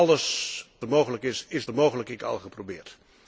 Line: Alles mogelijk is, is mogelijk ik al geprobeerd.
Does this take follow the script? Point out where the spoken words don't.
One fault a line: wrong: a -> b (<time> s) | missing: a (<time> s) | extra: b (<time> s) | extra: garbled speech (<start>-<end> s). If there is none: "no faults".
no faults